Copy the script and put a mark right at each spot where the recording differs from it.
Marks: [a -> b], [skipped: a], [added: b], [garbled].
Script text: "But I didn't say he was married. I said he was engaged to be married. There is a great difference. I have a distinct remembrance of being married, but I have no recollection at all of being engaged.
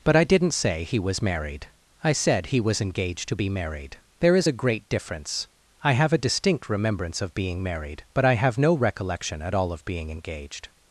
"But I didn't say he was married. I said he was engaged to be married. There is a great difference. I have a distinct remembrance of being married, but I have no recollection at all of being engaged.